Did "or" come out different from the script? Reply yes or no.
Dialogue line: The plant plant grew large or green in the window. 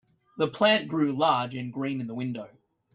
yes